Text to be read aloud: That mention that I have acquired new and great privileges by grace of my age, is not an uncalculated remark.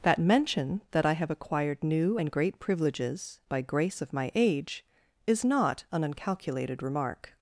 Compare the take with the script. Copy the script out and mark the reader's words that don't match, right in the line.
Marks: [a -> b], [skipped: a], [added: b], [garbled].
That mention that I have acquired new and great privileges by grace of my age, is not an uncalculated remark.